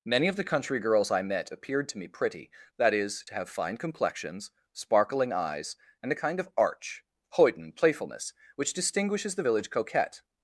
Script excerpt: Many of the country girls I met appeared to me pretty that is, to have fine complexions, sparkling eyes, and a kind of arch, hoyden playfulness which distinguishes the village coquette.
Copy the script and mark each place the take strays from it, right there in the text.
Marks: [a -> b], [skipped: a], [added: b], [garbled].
Many of the country girls I met appeared to me pretty that is, to have fine complexions, sparkling eyes, and a kind of arch, hoyden playfulness which distinguishes the village coquette.